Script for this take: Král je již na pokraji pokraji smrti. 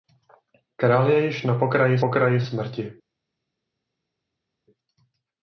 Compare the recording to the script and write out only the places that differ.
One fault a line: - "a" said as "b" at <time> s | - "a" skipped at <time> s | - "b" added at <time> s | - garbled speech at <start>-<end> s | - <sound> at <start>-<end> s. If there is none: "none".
none